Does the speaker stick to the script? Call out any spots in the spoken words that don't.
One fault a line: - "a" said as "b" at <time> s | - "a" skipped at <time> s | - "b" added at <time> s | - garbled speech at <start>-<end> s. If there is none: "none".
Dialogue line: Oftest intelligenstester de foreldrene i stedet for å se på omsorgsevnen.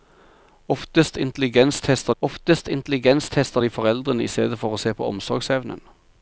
- "oftest intelligenstester" added at 2.2 s